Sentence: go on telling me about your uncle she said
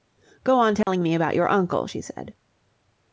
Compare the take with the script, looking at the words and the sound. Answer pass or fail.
fail